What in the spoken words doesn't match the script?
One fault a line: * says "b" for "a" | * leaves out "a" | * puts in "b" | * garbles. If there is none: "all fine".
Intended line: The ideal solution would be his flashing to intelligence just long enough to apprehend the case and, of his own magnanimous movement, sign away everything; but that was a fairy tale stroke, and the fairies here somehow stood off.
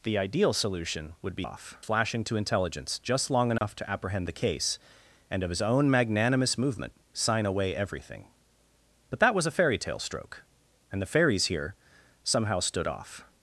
* says "off" for "his"